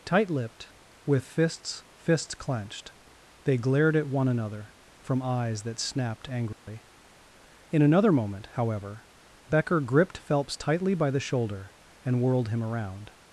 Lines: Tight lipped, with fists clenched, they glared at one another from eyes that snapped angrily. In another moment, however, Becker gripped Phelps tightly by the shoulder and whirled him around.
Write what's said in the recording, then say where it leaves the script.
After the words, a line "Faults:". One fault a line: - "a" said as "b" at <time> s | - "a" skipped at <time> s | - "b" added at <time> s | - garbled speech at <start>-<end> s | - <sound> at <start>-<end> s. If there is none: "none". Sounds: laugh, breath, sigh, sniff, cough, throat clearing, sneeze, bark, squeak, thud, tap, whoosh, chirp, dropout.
Tight lipped, with fists fists clenched, they glared at one another from eyes that snapped angrily. In another moment, however, Becker gripped Phelps tightly by the shoulder and whirled him around.
Faults:
- "fists" added at 1.9 s
- dropout at 6.5-6.7 s